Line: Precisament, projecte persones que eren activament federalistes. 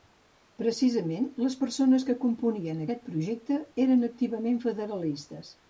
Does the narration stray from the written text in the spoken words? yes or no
yes